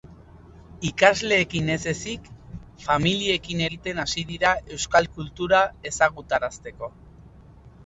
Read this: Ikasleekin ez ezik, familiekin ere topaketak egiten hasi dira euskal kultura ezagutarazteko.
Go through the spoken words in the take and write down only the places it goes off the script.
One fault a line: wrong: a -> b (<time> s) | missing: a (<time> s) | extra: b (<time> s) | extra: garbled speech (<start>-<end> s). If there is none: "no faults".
missing: ere topaketak (3.6 s)